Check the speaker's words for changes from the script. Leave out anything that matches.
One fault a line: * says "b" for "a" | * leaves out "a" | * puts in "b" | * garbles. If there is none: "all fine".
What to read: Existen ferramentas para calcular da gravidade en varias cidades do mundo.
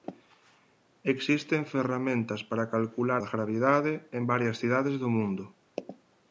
all fine